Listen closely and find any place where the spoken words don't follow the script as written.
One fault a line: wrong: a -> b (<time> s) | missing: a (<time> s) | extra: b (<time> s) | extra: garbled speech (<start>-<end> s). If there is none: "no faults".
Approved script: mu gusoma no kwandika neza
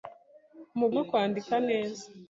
missing: gusoma (0.9 s)